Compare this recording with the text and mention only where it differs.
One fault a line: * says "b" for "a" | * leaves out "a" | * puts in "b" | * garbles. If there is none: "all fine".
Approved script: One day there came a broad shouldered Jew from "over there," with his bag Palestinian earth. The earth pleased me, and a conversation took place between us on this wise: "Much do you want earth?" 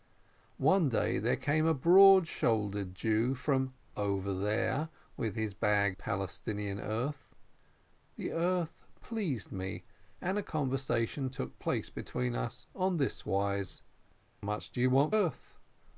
all fine